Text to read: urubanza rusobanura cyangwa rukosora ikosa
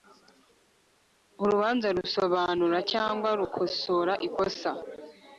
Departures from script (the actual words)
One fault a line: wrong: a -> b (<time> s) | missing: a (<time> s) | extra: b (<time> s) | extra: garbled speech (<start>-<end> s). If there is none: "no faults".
no faults